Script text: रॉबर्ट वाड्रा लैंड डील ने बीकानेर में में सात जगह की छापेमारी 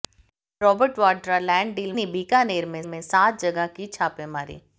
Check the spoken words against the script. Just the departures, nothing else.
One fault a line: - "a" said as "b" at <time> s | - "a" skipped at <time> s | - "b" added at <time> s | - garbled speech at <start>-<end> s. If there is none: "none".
none